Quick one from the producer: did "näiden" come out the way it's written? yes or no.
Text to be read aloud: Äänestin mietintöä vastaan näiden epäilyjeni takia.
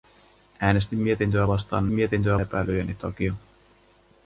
no